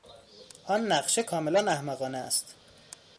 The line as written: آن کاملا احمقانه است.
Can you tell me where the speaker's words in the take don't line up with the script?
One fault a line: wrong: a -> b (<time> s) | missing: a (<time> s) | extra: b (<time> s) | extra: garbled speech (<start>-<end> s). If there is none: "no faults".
extra: نقشه (0.9 s)